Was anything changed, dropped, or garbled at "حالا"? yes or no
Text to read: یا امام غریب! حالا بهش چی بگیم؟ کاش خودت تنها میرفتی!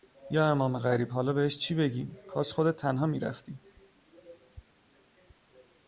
no